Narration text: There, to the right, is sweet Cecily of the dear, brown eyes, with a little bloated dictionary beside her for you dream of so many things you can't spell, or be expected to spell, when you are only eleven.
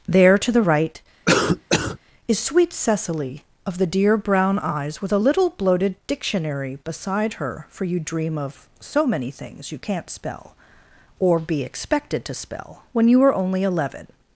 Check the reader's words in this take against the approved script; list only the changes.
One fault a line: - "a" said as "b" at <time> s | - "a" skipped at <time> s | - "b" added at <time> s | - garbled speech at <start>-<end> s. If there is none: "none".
none